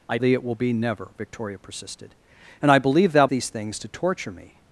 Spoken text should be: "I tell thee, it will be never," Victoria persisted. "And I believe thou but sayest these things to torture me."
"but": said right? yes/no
no